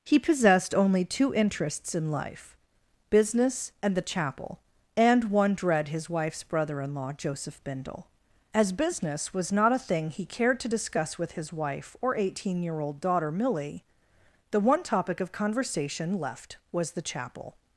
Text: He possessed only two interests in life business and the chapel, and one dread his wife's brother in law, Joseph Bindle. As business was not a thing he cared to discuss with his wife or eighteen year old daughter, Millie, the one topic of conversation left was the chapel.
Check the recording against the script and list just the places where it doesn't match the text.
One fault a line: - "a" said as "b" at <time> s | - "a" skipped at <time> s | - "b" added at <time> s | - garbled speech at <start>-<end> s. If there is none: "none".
none